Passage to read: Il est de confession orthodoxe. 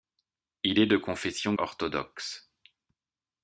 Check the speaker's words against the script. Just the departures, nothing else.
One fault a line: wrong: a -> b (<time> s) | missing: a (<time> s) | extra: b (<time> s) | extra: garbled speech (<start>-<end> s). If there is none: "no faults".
no faults